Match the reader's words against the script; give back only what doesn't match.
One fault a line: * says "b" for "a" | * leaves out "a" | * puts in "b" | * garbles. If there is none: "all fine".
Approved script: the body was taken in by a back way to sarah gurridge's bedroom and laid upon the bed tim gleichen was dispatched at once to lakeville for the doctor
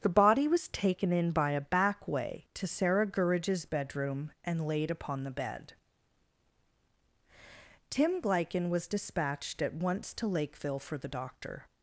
all fine